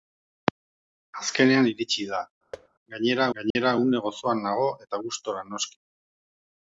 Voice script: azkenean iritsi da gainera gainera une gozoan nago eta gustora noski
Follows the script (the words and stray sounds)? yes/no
no